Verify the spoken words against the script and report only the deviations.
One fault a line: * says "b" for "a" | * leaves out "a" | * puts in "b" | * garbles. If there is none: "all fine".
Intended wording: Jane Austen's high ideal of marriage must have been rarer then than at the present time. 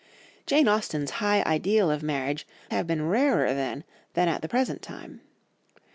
* leaves out "must"